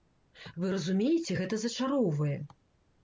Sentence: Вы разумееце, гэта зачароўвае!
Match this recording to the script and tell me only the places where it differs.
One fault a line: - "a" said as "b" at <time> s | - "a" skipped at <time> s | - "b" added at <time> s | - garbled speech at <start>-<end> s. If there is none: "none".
none